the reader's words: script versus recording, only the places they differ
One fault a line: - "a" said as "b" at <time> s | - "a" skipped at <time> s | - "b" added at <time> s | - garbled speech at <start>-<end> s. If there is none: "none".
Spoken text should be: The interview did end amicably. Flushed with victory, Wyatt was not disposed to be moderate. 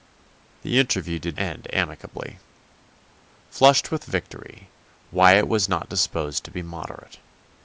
none